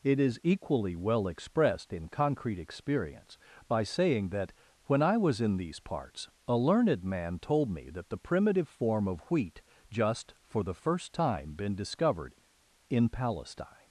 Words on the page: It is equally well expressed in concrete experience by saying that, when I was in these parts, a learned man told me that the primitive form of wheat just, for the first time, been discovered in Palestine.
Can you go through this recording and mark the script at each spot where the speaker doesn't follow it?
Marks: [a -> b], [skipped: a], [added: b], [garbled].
It is equally well expressed in concrete experience by saying that, when I was in these parts, a learned man told me that the primitive form of wheat just, for the first time, been discovered in Palestine.